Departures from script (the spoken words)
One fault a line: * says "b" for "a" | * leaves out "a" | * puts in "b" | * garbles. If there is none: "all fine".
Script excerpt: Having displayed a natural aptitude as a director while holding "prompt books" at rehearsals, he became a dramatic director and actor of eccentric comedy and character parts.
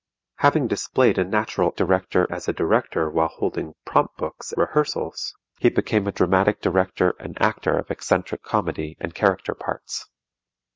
* says "director" for "aptitude"
* leaves out "at"